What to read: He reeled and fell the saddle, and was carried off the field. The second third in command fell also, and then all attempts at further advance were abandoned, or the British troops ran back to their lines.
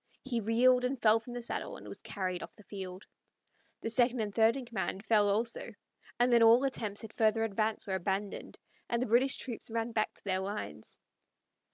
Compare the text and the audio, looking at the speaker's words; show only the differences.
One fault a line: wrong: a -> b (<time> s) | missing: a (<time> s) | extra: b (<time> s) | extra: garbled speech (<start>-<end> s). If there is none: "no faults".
extra: from (1.2 s)
extra: and (4.2 s)
wrong: or -> and (8.9 s)